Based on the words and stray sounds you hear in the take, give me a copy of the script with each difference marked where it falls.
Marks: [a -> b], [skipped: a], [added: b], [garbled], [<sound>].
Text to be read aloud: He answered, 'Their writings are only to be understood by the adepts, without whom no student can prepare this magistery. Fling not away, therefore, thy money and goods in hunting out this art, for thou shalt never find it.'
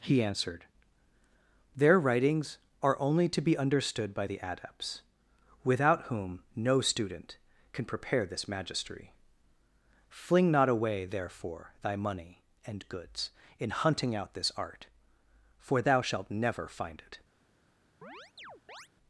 He answered, 'Their writings are only to be understood by the adepts, without whom no student can prepare this magistery. Fling not away, therefore, thy money and goods in hunting out this art, for thou shalt never find it.' [chirp]